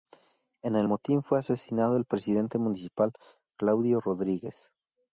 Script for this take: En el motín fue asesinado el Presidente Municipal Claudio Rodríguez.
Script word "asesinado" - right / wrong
right